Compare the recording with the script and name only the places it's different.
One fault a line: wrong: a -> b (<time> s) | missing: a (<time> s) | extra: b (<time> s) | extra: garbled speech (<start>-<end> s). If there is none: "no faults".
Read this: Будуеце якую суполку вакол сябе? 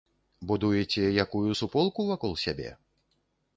no faults